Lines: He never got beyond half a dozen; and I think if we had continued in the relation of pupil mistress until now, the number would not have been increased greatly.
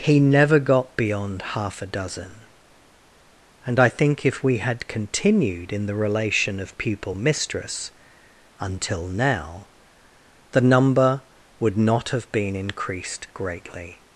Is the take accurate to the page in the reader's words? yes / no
yes